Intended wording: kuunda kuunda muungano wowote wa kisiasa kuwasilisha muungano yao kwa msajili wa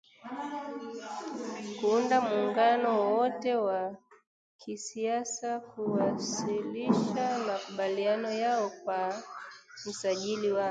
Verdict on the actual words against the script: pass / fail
fail